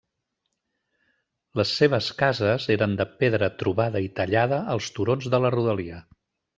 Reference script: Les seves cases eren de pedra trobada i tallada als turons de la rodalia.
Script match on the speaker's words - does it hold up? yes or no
yes